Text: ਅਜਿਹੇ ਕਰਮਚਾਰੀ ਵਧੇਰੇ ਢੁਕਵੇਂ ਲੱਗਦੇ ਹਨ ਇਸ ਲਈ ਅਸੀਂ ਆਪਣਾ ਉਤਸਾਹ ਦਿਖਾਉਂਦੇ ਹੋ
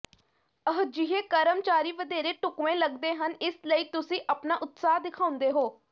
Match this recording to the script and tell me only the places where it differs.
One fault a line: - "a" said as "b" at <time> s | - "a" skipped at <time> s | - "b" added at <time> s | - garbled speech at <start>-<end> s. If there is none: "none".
- "ਅਸੀਂ" said as "ਤੁਸੀਂ" at 3.9 s